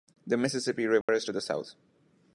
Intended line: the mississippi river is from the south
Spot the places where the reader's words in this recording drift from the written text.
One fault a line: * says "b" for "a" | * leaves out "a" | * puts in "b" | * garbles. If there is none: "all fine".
* says "to" for "from"